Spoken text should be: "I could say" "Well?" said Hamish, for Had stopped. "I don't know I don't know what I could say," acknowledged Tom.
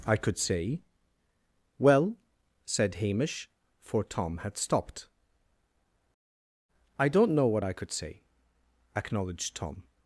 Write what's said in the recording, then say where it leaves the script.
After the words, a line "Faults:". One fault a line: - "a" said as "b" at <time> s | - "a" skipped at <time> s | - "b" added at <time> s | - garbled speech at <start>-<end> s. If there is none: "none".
"I could say" "Well?" said Hamish, for Tom had stopped. "I don't know what I could say," acknowledged Tom.
Faults:
- "Tom" added at 4.0 s
- "I don't know" skipped at 7.5 s